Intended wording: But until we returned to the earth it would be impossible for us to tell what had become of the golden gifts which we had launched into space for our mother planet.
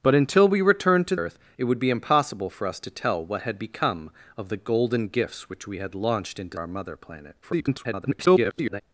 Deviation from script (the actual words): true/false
true